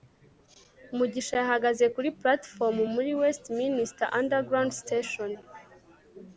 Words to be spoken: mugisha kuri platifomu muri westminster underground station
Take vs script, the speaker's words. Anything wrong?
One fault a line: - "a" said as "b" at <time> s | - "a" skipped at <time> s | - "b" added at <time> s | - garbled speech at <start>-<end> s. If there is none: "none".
- "yahagaze" added at 1.4 s